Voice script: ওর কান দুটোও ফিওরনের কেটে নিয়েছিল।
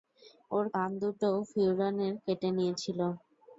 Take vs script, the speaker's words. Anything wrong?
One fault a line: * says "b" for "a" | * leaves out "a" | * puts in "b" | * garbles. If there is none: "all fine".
all fine